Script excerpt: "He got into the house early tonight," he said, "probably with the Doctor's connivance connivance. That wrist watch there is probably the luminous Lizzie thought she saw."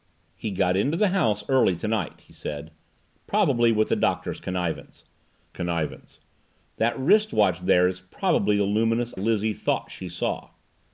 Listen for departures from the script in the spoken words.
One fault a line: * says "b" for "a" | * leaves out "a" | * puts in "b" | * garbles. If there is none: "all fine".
all fine